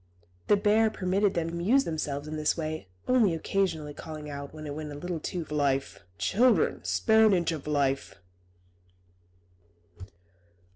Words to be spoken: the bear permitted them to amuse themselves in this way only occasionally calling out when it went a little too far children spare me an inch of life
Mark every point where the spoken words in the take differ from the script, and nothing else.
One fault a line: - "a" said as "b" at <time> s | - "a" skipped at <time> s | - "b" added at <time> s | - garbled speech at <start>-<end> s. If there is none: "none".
- "to" skipped at 1.5 s
- "far" said as "life" at 5.5 s
- "me" skipped at 7.3 s